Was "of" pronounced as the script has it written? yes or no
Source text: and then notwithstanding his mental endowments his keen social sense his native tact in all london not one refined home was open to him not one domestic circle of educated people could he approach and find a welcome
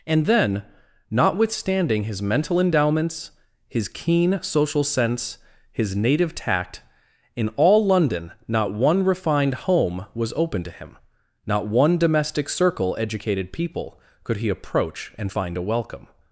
no